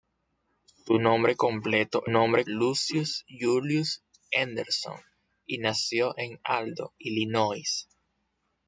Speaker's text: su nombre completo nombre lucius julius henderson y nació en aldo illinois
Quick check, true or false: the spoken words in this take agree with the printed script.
true